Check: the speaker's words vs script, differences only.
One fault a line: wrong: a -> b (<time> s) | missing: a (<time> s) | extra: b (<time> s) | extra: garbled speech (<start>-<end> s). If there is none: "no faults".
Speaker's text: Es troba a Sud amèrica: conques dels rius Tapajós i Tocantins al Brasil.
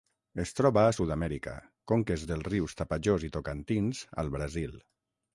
no faults